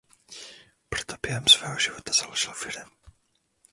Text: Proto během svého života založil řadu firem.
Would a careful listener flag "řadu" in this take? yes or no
yes